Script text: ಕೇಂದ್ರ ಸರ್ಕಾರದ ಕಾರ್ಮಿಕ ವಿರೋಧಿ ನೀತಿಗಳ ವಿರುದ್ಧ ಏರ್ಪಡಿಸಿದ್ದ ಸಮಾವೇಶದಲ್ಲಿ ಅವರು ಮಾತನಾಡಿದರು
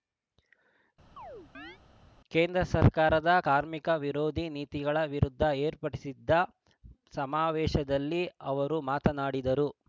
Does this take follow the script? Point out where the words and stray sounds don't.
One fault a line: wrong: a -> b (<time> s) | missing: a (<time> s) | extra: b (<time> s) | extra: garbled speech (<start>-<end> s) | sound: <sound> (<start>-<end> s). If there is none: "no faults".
sound: chirp (1.2-1.8 s)